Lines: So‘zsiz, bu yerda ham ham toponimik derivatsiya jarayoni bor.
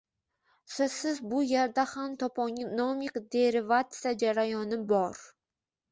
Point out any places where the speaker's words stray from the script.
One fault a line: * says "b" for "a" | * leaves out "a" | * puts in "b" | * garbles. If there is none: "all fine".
* leaves out "ham"